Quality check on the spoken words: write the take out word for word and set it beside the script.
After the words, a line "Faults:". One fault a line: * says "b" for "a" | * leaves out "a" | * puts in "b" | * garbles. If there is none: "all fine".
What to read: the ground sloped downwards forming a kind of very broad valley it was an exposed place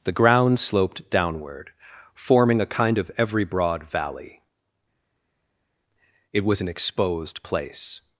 the ground sloped downward forming a kind of every broad valley it was an exposed place
Faults:
* says "downward" for "downwards"
* says "every" for "very"